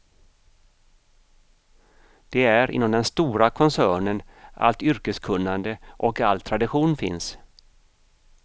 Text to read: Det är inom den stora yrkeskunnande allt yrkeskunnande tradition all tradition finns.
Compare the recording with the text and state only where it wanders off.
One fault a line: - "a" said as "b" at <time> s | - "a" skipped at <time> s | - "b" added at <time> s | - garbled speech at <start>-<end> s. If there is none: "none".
- "yrkeskunnande" said as "koncernen" at 3.5 s
- "tradition" said as "och" at 5.9 s